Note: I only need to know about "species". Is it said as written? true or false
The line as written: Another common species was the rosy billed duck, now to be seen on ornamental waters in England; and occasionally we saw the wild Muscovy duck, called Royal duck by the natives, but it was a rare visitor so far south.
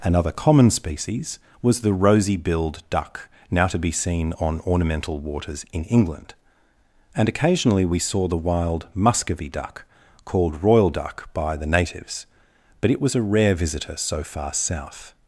true